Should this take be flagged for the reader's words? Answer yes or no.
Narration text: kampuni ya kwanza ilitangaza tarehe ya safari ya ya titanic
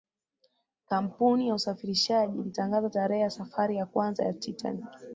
yes